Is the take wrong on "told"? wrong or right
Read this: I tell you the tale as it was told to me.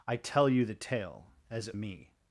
wrong